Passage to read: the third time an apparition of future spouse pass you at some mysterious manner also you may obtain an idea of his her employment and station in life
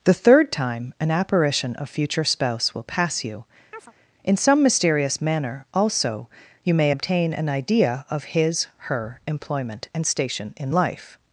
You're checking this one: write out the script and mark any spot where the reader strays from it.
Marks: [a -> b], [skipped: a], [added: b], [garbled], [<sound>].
the third time an apparition of future spouse [added: will] pass you [chirp] [at -> in] some mysterious manner also you may obtain an idea of his her employment and station in life